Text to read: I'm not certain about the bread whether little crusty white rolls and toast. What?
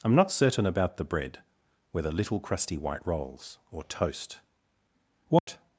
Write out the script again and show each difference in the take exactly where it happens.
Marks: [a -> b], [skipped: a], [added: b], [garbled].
I'm not certain about the bread whether little crusty white rolls [and -> or] toast. What?